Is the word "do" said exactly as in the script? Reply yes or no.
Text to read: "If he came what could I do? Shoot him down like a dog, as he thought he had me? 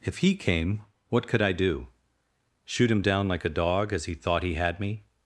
yes